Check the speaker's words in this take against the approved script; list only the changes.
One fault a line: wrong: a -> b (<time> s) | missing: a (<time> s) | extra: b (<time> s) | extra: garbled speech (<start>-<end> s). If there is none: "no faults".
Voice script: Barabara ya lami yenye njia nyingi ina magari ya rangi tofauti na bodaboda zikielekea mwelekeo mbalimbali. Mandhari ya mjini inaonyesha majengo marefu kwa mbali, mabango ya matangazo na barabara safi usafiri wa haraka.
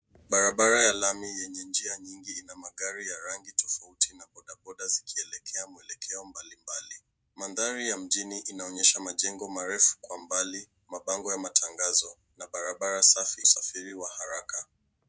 no faults